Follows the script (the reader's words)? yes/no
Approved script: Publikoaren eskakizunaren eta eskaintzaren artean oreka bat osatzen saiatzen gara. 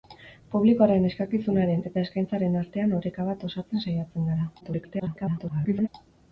no